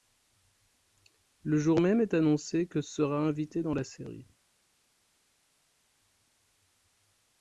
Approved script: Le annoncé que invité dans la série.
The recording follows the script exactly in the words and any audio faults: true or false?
false